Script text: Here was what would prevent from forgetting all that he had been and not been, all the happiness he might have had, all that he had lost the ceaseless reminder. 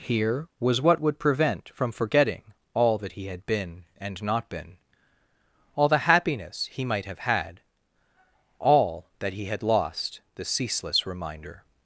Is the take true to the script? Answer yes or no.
yes